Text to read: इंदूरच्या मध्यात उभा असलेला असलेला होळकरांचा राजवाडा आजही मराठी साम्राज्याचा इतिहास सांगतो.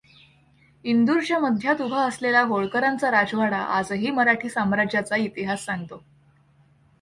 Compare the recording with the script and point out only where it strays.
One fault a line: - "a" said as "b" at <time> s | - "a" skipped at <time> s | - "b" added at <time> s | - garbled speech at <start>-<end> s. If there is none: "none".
- "असलेला" skipped at 2.4 s